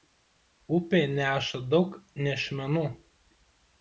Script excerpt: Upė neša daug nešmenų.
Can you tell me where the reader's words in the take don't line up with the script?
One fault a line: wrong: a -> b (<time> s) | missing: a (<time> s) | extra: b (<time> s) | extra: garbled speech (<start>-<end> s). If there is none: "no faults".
no faults